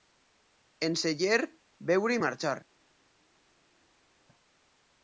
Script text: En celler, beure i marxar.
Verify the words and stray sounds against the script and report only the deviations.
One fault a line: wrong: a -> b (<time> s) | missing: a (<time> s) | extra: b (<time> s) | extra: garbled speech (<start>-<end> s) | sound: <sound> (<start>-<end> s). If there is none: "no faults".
no faults